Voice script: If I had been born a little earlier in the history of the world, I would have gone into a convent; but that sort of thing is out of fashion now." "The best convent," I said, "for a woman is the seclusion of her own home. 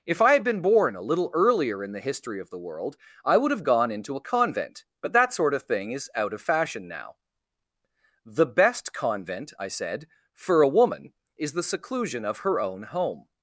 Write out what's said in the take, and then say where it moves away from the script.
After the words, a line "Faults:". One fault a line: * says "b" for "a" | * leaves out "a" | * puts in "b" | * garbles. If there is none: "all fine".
If I had been born a little earlier in the history of the world, I would have gone into a convent; but that sort of thing is out of fashion now." "The best convent," I said, "for a woman is the seclusion of her own home.
Faults:
all fine